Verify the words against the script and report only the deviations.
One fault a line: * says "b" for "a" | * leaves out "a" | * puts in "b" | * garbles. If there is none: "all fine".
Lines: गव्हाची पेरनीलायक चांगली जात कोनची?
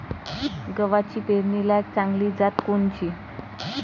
all fine